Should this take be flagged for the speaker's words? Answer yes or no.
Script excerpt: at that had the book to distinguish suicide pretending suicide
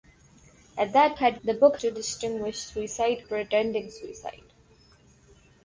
no